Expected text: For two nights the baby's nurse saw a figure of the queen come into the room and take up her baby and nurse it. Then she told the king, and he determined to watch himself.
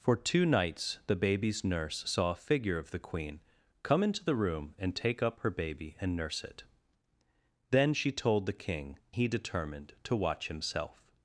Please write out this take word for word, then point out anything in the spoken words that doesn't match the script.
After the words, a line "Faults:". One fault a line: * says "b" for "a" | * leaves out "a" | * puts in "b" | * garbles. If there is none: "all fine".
For two nights the baby's nurse saw a figure of the queen come into the room and take up her baby and nurse it. Then she told the king, he determined to watch himself.
Faults:
* leaves out "and"